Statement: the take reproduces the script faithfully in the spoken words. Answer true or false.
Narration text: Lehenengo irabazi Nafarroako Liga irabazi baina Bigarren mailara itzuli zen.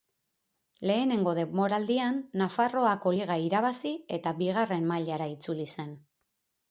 false